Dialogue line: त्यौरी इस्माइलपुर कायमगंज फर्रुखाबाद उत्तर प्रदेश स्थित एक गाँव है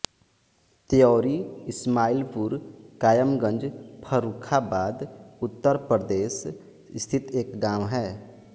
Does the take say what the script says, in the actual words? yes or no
yes